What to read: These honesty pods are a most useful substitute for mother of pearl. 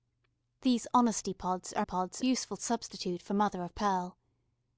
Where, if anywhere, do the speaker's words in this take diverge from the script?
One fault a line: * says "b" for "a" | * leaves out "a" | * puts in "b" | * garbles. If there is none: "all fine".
* says "pods" for "most"